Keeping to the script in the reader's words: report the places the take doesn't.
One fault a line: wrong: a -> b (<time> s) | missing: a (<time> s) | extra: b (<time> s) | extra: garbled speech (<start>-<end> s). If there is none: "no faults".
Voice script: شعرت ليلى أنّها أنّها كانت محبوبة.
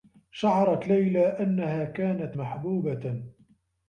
missing: أنّها (1.8 s)